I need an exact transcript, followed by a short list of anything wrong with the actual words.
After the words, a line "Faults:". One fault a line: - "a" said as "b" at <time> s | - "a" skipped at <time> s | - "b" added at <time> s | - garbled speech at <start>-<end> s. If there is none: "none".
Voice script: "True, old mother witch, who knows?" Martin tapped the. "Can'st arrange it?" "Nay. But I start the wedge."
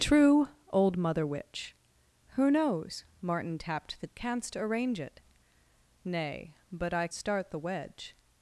"True, old mother witch, who knows?" Martin tapped the. "Can'st arrange it?" "Nay. But I start the wedge."
Faults:
none